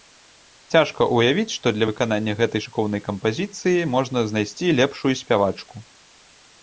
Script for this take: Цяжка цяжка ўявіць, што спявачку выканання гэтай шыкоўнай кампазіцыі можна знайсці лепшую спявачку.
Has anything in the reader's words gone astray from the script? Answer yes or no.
yes